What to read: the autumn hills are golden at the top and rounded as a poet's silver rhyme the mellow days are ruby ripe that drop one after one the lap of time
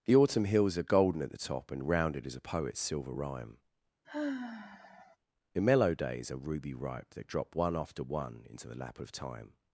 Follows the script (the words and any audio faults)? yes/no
no